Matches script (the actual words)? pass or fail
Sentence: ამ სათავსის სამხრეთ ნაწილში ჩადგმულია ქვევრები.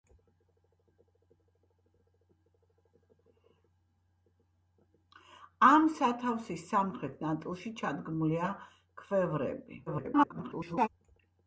fail